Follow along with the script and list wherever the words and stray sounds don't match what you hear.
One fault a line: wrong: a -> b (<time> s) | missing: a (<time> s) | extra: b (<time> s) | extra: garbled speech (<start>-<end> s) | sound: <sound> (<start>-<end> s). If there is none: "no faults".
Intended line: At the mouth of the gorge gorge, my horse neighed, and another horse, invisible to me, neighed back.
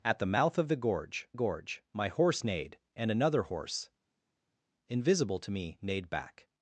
no faults